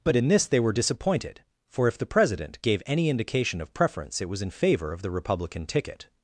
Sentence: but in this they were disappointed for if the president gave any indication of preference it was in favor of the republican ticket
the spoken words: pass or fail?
pass